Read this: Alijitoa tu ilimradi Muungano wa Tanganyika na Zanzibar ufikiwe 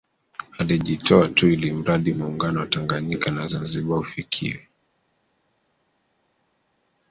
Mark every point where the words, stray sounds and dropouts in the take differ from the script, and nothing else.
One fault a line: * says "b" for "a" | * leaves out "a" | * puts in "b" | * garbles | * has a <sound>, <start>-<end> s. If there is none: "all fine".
all fine